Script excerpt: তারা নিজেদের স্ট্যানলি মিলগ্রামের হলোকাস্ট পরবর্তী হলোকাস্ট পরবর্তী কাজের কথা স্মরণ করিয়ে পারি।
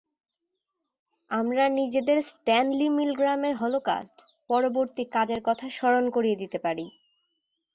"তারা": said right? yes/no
no